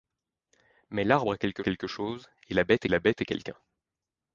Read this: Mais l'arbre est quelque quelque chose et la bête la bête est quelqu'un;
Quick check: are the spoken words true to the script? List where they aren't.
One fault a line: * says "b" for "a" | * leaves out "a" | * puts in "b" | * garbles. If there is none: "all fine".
all fine